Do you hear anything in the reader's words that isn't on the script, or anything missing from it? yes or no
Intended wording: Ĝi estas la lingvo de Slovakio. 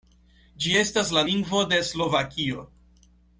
no